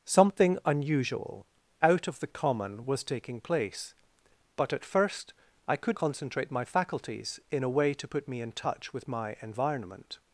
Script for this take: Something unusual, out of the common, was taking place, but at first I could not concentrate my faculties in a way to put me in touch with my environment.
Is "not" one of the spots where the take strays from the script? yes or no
yes